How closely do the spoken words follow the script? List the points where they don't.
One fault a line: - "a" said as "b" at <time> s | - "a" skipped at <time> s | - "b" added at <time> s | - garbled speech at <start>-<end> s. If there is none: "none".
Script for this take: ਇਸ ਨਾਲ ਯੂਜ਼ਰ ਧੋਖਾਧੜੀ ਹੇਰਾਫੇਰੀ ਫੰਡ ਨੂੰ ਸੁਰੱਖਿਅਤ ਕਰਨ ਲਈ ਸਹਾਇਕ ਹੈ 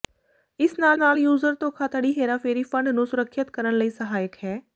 - "ਨਾਲ" added at 1.0 s